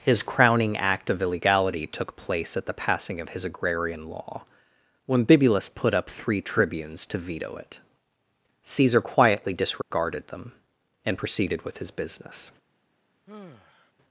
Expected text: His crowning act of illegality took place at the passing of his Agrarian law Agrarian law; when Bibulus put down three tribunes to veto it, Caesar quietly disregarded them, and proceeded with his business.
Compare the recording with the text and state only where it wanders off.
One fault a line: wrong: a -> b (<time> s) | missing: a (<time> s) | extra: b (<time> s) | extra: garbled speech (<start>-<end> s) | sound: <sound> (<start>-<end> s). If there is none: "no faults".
missing: Agrarian law (4.5 s)
wrong: down -> up (5.9 s)
sound: dropout (9.8-9.9 s)
sound: sigh (13.3-13.9 s)